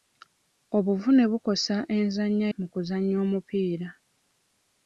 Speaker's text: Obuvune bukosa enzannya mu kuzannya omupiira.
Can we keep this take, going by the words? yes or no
yes